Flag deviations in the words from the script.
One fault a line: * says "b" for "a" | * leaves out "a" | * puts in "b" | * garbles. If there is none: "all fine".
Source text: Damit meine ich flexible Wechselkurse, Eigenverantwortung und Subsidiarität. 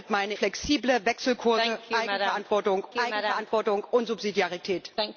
* leaves out "ich"
* puts in "Eigenverantwortung"